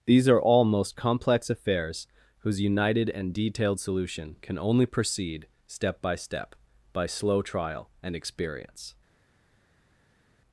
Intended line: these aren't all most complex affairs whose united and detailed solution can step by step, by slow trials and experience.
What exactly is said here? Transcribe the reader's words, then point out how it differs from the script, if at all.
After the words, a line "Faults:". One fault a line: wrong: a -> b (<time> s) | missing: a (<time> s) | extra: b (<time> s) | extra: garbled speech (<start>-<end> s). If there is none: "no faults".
these are all most complex affairs whose united and detailed solution can only proceed step by step, by slow trial and experience.
Faults:
wrong: aren't -> are (0.3 s)
extra: only proceed (4.6 s)
wrong: trials -> trial (7.4 s)